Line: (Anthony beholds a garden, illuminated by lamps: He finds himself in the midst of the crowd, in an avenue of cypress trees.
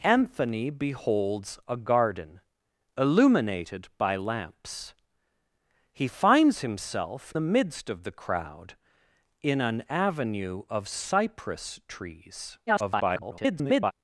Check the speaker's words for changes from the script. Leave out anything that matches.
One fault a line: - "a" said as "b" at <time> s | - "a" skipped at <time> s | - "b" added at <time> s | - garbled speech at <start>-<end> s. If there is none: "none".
- "in" skipped at 7.3 s
- garbled speech at 12.7-13.9 s